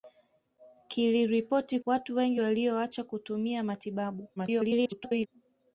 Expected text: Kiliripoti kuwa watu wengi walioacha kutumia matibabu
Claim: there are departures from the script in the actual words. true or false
true